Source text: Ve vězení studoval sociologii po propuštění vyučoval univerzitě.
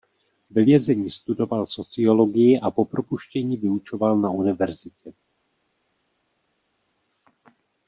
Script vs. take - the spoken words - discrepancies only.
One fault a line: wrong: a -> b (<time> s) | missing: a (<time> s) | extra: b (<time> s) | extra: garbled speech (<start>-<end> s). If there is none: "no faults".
extra: a (2.6 s)
extra: na (4.2 s)